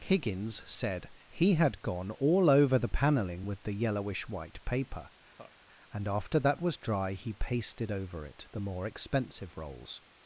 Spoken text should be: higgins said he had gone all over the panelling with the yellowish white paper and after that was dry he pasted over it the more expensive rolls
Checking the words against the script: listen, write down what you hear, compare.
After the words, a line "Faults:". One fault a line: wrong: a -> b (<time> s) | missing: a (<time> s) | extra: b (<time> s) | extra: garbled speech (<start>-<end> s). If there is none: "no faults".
higgins said he had gone all over the panelling with the yellowish white paper and after that was dry he pasted over it the more expensive rolls
Faults:
no faults